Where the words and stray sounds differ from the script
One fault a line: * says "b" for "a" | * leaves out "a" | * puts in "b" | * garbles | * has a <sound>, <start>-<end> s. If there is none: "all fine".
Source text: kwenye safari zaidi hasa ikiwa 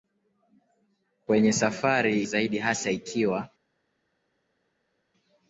all fine